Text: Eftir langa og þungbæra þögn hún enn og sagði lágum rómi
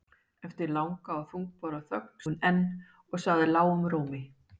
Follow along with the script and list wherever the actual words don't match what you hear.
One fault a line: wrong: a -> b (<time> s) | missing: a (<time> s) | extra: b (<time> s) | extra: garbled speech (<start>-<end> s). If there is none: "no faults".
no faults